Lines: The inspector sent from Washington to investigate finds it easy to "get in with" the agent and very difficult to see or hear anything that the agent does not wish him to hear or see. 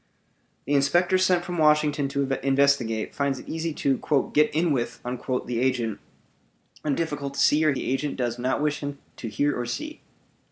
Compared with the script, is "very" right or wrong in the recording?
wrong